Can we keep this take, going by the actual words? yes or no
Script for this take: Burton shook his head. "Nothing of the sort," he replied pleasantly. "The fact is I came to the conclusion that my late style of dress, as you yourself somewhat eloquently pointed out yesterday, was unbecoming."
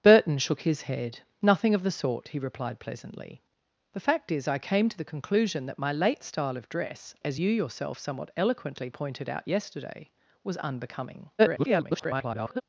no